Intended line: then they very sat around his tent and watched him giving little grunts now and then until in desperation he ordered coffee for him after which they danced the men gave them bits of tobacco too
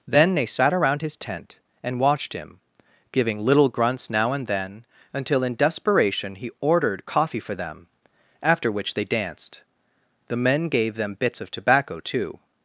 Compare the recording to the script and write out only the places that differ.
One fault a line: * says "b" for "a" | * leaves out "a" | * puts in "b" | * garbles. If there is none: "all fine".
* leaves out "very"
* says "them" for "him"